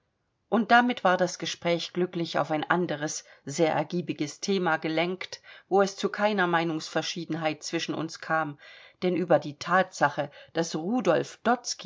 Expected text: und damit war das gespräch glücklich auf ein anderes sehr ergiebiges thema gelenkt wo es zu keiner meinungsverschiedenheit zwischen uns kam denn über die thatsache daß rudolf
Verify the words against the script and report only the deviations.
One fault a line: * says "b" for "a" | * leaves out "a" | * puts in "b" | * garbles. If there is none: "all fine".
all fine